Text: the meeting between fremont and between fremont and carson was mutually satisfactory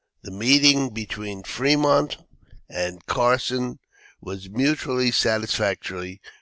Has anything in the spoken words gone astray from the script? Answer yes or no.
yes